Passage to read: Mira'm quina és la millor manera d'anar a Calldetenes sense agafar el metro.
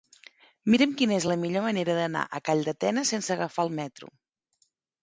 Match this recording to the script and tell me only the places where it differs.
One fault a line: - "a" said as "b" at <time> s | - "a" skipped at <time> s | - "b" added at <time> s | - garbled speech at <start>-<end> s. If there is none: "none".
none